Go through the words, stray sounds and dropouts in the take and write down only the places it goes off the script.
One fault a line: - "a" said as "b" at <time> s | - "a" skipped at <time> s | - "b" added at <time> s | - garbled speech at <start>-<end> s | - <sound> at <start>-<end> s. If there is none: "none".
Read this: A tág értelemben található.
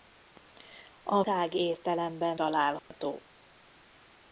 - dropout at 2.8-2.9 s